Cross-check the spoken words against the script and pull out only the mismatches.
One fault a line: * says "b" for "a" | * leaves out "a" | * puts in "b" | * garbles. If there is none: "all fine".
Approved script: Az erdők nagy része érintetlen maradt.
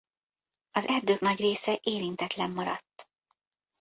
all fine